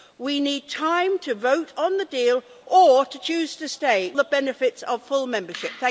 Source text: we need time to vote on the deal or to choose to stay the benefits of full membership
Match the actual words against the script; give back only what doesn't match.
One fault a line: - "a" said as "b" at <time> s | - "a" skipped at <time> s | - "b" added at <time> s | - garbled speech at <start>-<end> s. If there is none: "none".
none